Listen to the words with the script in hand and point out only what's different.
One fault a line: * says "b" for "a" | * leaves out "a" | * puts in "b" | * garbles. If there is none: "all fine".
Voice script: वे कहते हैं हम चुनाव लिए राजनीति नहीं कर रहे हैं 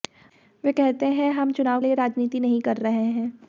all fine